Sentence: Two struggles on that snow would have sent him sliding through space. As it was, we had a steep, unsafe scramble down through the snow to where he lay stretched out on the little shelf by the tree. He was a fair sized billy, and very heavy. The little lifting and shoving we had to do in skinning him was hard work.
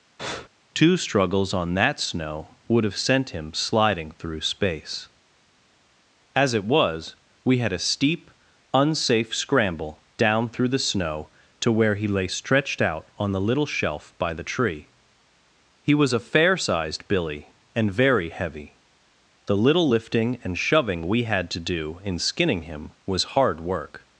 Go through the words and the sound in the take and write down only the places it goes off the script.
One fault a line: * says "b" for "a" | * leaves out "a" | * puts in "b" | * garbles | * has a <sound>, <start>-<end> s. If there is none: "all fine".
* has a breath, 0.2-0.5 s